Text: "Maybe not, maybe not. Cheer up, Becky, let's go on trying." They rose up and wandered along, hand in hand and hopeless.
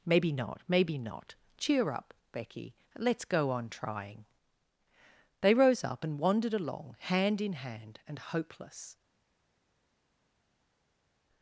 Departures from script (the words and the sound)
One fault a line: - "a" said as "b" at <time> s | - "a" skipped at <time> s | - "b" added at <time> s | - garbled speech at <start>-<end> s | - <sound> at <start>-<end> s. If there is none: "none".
none